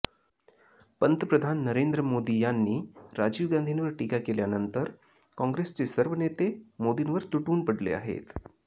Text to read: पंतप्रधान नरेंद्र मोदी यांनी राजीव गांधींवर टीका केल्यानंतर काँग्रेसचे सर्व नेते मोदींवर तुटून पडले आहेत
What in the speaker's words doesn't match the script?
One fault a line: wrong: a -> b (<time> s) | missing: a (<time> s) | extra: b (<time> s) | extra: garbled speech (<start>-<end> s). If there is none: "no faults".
no faults